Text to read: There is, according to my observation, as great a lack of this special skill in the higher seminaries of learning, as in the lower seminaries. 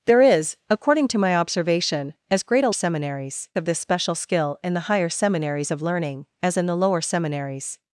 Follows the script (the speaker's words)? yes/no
no